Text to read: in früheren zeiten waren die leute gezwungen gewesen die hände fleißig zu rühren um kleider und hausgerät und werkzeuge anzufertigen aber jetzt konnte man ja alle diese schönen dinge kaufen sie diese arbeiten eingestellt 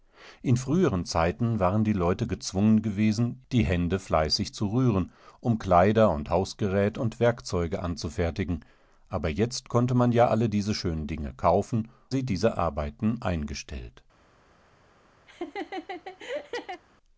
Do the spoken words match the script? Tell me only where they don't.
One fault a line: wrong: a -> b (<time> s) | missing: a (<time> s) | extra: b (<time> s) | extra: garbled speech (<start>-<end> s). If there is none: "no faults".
no faults